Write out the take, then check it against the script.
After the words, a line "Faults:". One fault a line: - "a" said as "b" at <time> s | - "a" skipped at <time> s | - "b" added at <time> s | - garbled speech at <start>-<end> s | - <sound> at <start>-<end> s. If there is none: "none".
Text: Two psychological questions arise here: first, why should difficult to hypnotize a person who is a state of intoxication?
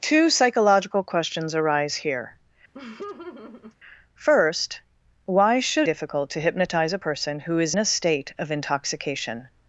Two psychological questions arise here: first, why should difficult to hypnotize a person who is a state of intoxication?
Faults:
- laugh at 2.7-3.8 s